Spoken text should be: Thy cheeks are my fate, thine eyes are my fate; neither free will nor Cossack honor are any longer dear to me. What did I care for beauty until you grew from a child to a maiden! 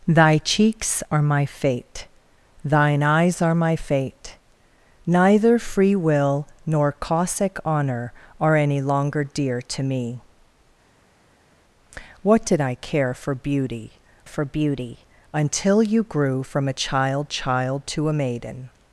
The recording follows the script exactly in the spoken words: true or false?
false